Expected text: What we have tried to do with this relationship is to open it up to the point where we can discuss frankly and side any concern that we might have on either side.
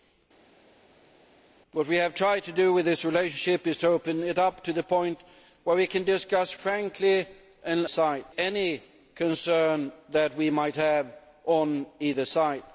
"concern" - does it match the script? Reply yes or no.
yes